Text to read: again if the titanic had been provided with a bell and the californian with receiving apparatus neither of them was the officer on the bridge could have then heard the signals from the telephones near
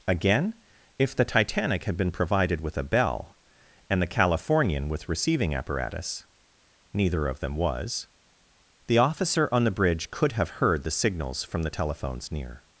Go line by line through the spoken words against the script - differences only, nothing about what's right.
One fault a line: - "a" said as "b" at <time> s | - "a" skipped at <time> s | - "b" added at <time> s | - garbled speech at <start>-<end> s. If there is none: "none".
- "then" skipped at 10.5 s